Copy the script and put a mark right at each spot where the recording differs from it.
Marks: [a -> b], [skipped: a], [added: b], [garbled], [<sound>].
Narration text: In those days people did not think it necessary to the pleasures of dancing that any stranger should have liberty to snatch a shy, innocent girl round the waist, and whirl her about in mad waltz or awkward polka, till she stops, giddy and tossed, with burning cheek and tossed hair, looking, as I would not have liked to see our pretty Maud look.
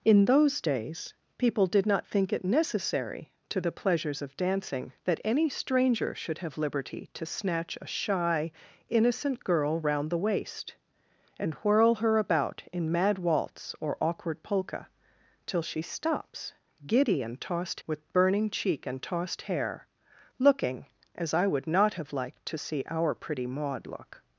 In those days people did not think it necessary to the pleasures of dancing that any stranger should have liberty to snatch a shy, innocent girl round the waist, and whirl her about in mad waltz or awkward polka, till she stops, giddy and tossed, with burning cheek and tossed hair, looking, as I would not have liked to see our pretty Maud look.